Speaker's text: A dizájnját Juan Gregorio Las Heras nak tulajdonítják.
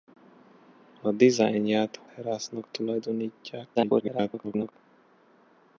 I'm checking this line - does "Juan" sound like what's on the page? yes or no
no